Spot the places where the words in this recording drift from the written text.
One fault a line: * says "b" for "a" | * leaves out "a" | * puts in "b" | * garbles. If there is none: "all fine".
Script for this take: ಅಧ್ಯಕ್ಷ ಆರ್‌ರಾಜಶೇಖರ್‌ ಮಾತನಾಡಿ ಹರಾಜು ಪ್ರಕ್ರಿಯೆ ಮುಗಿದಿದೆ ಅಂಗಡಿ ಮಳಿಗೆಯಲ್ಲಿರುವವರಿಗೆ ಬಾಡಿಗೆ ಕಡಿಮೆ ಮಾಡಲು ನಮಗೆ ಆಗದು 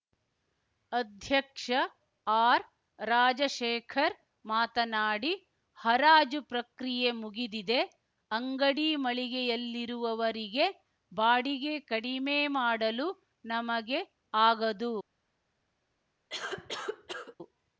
all fine